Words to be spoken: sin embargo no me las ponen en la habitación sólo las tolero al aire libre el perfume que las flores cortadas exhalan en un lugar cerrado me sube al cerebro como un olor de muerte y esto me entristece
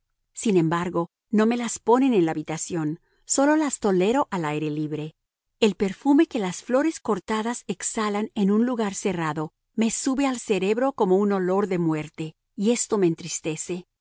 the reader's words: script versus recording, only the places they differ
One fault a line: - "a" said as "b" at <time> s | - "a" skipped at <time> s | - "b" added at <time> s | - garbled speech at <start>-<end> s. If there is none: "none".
none